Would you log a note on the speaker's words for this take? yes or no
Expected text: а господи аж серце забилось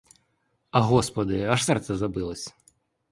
no